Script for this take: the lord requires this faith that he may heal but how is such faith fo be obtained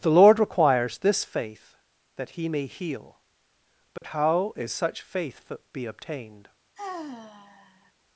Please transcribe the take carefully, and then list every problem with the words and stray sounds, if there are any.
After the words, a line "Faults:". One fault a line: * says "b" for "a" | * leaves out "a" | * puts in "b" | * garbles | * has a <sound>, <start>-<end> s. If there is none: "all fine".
the lord requires this faith that he may heal but how is such faith be obtained
Faults:
* has a dropout, 4.0-4.0 s
* leaves out "fo"
* has a sigh, 6.8-7.9 s